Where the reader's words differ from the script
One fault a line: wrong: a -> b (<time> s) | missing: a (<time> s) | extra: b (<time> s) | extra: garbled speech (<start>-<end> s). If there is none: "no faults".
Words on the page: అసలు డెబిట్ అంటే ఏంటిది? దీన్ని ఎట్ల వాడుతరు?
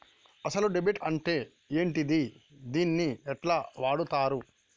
no faults